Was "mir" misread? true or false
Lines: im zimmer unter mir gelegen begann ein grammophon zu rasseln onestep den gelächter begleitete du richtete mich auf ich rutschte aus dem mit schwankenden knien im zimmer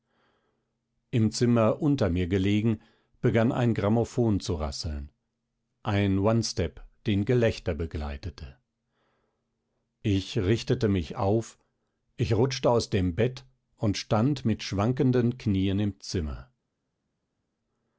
false